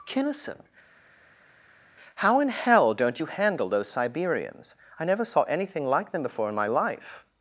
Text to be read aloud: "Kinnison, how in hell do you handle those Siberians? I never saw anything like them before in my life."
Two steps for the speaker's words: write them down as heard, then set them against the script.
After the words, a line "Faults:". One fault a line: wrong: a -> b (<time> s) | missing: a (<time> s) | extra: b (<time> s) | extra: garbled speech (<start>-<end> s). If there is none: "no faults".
"Kinnison, how in hell don't you handle those Siberians? I never saw anything like them before in my life."
Faults:
wrong: do -> don't (2.9 s)